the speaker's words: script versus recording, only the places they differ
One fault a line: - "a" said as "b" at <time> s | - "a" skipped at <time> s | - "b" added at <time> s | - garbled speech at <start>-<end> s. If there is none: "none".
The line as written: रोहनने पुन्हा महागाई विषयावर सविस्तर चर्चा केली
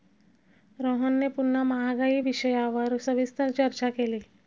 none